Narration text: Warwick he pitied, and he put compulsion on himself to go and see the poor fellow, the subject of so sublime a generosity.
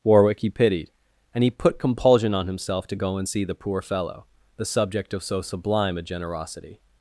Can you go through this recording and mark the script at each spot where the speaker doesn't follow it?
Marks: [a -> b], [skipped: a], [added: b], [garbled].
Warwick he pitied, and he put compulsion on himself to go and see the poor fellow, the subject of so sublime a generosity.